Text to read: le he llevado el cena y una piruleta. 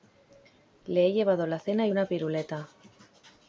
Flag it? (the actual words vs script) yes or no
yes